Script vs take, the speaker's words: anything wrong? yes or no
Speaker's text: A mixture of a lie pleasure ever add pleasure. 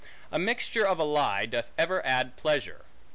yes